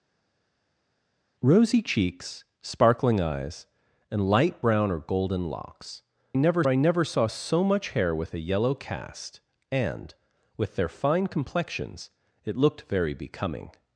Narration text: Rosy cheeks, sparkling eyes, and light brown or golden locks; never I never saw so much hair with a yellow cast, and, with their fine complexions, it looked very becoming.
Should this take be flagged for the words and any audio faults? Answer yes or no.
no